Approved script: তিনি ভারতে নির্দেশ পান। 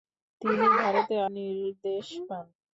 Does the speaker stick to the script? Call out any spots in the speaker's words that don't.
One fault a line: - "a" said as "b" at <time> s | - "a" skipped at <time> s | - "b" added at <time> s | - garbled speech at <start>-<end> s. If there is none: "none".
none